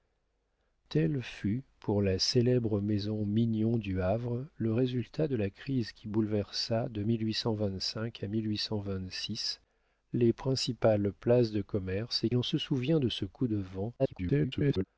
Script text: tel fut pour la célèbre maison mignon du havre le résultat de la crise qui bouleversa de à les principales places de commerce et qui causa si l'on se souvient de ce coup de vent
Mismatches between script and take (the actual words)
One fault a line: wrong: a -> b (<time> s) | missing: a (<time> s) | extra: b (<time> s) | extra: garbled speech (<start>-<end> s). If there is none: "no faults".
missing: qui causa si (12.3 s)
extra: garbled speech (14.0-14.8 s)